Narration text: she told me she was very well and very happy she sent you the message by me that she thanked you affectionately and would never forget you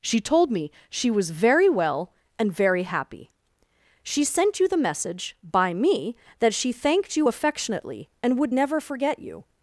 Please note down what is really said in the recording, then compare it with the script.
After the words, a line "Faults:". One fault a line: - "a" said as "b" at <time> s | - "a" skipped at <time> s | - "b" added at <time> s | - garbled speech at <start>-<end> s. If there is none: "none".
she told me she was very well and very happy she sent you the message by me that she thanked you affectionately and would never forget you
Faults:
none